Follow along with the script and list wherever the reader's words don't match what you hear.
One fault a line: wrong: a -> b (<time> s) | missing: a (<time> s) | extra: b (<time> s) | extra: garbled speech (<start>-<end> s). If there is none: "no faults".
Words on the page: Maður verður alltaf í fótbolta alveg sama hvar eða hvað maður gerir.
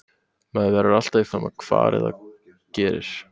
missing: fótbolta alveg (1.3 s)
missing: hvað maður (2.1 s)